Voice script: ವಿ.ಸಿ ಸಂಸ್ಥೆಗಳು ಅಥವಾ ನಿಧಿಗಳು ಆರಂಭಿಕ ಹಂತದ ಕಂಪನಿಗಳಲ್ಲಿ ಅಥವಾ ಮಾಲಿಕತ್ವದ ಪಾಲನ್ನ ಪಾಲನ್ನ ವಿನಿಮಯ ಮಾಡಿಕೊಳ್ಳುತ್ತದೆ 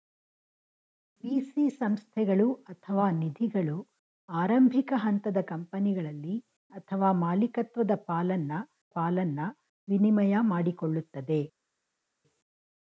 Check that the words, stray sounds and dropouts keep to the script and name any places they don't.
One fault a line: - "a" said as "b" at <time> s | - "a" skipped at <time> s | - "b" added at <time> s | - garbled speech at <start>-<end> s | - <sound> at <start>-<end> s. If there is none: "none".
none